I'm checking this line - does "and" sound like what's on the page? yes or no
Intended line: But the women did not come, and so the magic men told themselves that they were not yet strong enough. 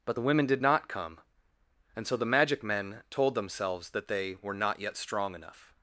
yes